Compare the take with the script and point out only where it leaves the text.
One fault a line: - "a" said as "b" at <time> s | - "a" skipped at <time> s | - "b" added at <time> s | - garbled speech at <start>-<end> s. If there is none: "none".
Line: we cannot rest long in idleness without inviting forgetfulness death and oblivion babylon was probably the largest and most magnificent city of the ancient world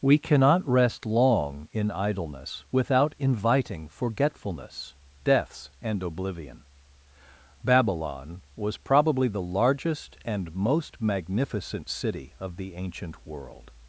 - "death" said as "deaths" at 5.2 s